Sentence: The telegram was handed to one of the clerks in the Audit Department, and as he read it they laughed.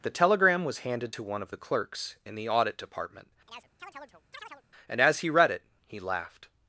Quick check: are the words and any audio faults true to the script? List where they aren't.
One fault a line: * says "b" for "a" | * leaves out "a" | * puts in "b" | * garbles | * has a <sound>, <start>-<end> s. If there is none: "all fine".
* has a chirp, 3.5-4.6 s
* says "he" for "they"